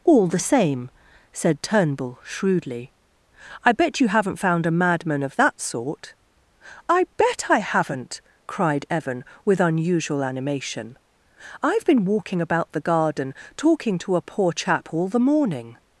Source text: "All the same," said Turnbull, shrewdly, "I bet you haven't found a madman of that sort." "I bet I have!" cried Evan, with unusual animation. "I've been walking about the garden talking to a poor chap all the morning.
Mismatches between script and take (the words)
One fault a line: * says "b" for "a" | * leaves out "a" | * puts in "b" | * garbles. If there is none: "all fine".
* says "haven't" for "have"